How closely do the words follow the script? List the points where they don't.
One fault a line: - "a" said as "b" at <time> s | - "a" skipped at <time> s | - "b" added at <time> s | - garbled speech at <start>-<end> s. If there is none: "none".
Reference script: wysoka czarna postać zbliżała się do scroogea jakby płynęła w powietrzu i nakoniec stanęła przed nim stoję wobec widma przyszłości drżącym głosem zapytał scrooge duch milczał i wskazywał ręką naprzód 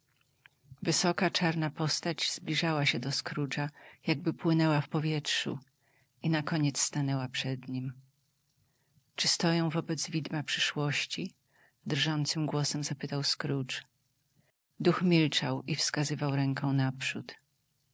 - "czy" added at 9.2 s